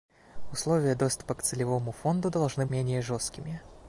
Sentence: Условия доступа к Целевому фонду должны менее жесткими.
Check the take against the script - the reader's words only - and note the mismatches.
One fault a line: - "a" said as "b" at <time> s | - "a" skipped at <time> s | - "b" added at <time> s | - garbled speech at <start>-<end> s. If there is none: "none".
none